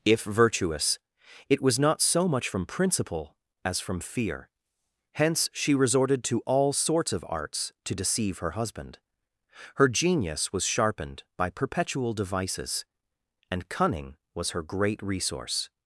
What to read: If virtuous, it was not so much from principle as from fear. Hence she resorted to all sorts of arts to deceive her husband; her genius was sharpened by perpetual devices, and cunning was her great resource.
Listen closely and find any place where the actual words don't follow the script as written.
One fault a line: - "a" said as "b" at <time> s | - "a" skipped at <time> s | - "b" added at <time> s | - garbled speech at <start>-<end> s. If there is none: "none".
none